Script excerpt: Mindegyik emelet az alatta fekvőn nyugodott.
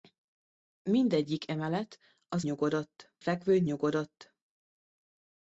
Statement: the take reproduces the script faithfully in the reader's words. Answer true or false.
false